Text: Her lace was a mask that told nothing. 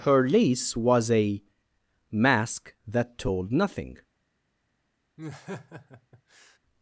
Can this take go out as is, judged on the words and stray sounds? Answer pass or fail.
fail